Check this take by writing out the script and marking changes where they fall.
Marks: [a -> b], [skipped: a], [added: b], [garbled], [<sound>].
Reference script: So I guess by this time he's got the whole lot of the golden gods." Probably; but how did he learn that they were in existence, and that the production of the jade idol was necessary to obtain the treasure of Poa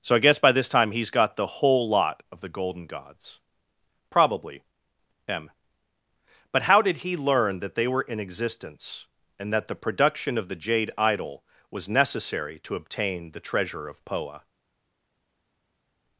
So I guess by this time he's got the whole lot of the golden gods." Probably; [added: m] but how did he learn that they were in existence, and that the production of the jade idol was necessary to obtain the treasure of Poa